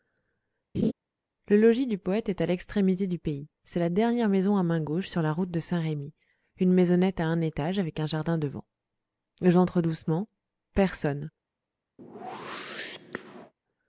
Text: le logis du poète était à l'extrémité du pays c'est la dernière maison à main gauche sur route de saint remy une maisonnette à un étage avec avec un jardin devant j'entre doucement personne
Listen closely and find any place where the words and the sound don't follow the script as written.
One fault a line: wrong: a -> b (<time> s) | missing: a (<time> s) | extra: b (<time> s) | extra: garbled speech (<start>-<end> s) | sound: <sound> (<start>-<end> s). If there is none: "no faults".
sound: laugh (0.7-0.9 s)
wrong: était -> est (2.3 s)
extra: la (5.2 s)
missing: avec (8.0 s)
sound: whoosh (12.0-13.5 s)